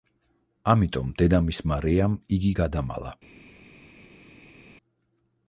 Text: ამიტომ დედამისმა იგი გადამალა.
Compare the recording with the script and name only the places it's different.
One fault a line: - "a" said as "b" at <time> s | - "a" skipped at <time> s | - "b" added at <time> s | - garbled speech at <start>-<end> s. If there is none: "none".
- "რეამ" added at 1.9 s